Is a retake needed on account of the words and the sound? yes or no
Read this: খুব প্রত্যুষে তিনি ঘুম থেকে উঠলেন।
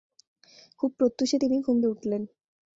yes